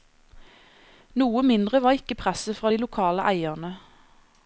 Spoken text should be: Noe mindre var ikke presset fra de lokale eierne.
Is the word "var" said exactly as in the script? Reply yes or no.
yes